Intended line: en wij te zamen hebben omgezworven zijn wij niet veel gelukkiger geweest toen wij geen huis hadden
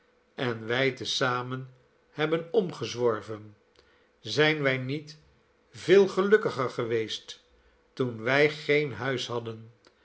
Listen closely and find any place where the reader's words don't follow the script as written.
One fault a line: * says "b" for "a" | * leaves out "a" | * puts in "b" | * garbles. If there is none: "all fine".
all fine